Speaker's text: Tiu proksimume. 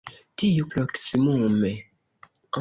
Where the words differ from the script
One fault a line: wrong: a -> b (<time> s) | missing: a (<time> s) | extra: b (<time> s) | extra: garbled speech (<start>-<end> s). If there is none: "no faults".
no faults